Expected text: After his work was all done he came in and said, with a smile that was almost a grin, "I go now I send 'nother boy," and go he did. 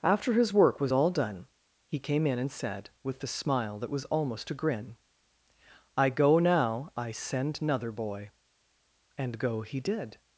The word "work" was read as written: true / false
true